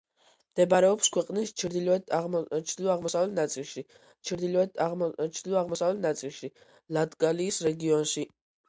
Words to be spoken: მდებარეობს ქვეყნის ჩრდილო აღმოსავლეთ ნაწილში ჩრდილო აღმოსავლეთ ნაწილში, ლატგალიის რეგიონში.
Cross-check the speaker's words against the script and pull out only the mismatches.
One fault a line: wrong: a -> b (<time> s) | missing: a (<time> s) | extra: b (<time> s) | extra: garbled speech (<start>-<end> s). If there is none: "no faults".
no faults